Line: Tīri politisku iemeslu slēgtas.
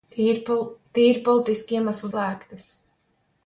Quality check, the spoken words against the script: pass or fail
pass